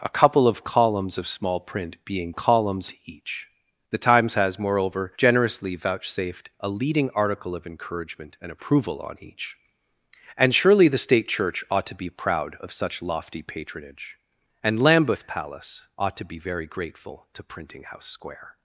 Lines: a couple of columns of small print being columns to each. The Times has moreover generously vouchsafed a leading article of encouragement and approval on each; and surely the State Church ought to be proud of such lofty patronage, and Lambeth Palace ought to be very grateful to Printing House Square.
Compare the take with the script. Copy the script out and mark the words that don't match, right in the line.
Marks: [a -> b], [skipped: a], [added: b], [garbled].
a couple of columns of small print being columns to each. The Times has moreover generously vouchsafed a leading article of encouragement and approval on each; and surely the State Church ought to be proud of such lofty patronage, and Lambeth Palace ought to be very grateful to Printing House Square.